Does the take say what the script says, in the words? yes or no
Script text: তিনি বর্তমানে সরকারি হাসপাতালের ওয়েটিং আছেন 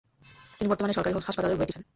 yes